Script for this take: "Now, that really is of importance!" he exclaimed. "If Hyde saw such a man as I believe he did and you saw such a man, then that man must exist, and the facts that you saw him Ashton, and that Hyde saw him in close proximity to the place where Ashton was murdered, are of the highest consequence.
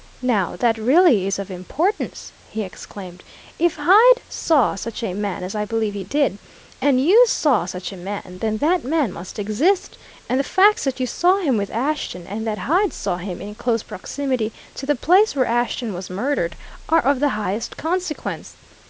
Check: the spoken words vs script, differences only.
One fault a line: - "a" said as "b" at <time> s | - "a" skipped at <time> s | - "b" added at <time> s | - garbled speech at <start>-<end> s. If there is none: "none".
- "with" added at 11.6 s